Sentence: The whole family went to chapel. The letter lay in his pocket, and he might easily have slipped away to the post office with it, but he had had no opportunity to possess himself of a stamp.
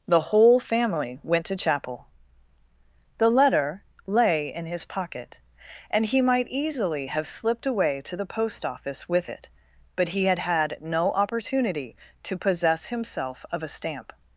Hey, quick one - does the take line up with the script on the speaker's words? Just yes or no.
yes